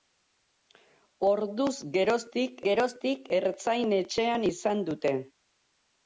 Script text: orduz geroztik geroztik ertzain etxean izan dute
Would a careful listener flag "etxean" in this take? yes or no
no